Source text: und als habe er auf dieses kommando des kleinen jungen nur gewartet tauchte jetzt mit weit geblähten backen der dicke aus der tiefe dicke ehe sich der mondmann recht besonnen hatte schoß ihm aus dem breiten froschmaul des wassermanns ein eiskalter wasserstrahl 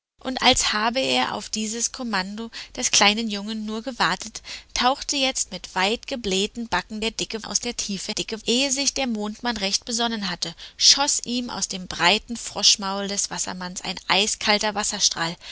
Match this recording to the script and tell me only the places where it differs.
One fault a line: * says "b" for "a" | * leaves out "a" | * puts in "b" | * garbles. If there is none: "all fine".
all fine